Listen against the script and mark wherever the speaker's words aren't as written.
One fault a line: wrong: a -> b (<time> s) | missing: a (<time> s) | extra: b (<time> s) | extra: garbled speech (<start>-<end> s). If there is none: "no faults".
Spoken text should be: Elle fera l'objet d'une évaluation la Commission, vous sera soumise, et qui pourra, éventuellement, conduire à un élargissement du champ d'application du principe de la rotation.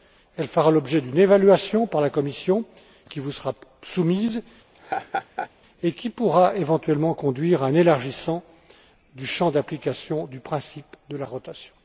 extra: par (1.9 s)
extra: qui (3.1 s)